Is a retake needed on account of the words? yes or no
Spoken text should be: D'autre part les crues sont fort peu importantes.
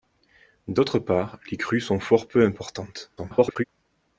yes